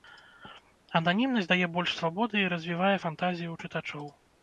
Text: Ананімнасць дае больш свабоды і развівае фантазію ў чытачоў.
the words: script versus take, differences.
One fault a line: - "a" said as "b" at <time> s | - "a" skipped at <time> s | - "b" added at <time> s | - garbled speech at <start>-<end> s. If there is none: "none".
none